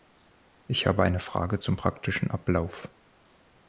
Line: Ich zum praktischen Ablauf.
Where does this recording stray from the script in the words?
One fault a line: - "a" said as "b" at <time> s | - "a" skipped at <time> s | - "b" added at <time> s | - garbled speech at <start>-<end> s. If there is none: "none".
- "habe eine Frage" added at 0.9 s